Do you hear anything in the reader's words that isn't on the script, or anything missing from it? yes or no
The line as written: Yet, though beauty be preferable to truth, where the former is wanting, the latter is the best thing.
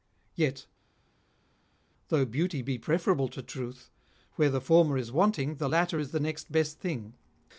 yes